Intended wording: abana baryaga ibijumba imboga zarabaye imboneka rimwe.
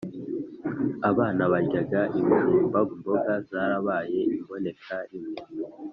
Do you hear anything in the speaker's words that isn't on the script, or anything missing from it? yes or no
no